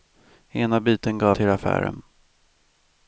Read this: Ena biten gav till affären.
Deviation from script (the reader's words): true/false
false